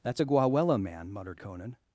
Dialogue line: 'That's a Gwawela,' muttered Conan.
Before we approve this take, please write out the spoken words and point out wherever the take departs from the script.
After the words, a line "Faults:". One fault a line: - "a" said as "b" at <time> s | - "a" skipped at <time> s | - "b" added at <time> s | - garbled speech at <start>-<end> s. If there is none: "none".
'That's a Gwawela man,' muttered Conan.
Faults:
- "man" added at 0.8 s